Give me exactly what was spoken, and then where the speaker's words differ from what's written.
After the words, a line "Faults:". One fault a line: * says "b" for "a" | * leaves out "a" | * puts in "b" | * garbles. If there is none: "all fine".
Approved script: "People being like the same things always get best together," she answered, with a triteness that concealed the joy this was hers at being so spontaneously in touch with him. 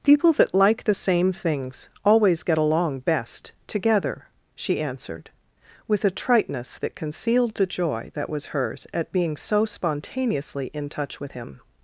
"People that like the same things always get along best together," she answered, with a triteness that concealed the joy that was hers at being so spontaneously in touch with him.
Faults:
* says "that" for "being"
* puts in "along"
* says "that" for "this"